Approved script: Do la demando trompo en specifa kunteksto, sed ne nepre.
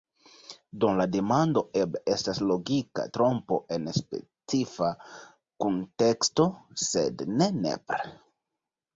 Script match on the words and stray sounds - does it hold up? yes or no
no